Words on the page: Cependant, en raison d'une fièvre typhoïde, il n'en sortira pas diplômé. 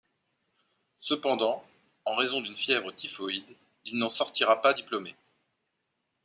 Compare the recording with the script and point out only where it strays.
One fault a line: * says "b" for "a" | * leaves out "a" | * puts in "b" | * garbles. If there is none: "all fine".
all fine